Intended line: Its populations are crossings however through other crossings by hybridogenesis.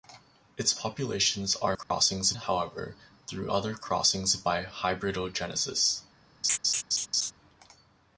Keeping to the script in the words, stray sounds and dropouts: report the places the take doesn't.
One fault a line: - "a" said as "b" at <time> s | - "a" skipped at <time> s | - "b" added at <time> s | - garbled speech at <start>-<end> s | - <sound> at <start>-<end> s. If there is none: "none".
- dropout at 1.8-1.9 s
- laugh at 6.4-7.3 s